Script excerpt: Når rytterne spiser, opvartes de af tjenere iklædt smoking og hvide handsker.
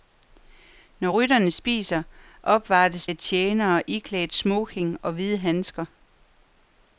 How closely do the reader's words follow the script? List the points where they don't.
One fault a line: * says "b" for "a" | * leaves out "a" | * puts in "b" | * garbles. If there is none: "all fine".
* leaves out "de"